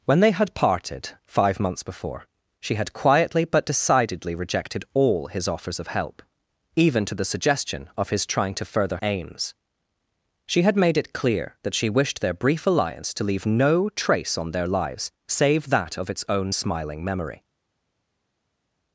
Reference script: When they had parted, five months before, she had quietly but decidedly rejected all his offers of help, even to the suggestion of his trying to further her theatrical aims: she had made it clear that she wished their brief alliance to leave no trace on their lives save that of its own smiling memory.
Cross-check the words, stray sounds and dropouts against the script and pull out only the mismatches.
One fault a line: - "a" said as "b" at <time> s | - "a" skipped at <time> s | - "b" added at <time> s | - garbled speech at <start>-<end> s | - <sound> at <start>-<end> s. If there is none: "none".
- "her theatrical" skipped at 9.0 s